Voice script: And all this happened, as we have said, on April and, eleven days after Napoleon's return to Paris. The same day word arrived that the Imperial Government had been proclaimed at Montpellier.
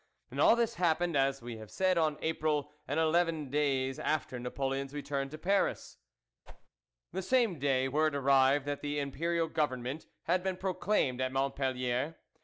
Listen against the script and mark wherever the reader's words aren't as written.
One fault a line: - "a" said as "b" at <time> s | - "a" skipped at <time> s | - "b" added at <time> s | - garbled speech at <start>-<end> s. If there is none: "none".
none